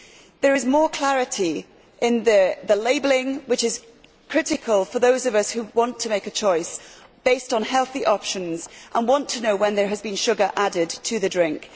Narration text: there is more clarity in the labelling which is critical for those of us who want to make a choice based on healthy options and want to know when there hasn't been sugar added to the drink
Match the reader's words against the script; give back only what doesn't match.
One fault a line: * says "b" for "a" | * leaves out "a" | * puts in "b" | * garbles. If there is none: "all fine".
* says "has" for "hasn't"